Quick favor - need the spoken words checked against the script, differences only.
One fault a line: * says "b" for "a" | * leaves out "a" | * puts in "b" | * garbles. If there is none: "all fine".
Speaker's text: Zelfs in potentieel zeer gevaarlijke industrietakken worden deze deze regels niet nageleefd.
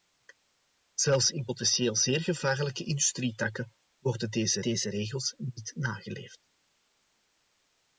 all fine